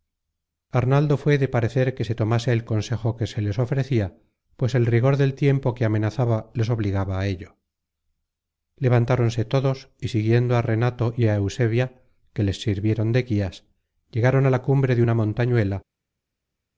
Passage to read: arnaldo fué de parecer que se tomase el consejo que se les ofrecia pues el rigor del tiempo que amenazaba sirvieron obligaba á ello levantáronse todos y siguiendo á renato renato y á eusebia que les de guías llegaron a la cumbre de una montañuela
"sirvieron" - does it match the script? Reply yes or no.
no